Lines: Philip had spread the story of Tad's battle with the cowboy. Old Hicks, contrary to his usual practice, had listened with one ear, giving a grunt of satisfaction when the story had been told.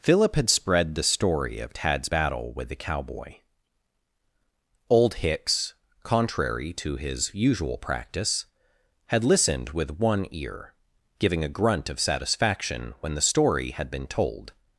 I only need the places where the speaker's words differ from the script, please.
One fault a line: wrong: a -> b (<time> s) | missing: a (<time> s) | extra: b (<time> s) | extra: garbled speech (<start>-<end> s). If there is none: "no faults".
no faults